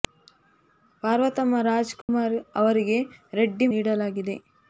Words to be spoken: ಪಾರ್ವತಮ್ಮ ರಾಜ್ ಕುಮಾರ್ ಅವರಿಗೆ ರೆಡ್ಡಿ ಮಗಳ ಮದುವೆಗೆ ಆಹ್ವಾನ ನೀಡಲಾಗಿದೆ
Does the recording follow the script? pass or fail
fail